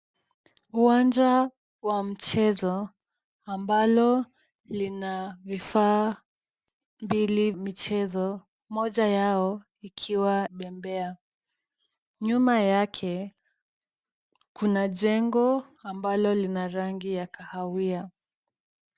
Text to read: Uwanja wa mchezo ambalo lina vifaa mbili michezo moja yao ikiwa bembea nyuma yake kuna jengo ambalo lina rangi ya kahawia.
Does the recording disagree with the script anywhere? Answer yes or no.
no